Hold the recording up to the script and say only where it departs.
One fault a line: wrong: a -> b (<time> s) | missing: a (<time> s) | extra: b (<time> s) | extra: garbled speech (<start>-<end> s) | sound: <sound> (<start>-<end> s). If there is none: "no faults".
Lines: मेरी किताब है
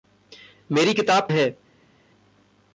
no faults